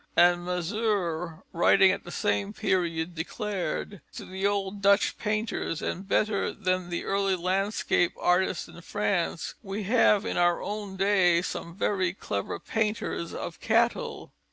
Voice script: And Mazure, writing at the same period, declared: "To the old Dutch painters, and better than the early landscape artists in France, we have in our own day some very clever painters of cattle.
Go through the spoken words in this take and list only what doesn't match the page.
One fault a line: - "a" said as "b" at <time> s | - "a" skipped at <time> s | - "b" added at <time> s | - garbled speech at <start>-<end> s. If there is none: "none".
none